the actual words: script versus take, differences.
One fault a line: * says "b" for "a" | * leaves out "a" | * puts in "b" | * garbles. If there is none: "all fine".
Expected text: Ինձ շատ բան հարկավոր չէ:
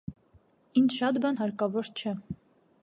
all fine